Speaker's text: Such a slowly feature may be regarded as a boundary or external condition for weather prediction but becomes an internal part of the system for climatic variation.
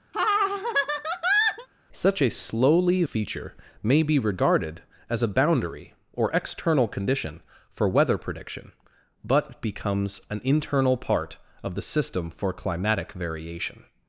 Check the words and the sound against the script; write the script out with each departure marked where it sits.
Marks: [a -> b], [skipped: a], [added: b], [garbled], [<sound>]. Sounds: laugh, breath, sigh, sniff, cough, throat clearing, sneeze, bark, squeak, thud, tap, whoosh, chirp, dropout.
[laugh] Such a slowly feature may be regarded as a boundary or external condition for weather prediction but becomes an internal part of the system for climatic variation.